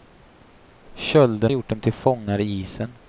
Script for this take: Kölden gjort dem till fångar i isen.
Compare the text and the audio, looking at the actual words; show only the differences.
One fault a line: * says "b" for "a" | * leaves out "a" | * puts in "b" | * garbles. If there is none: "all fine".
all fine